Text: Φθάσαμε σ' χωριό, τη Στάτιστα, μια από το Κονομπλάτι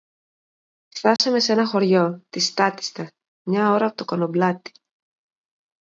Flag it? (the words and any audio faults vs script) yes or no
yes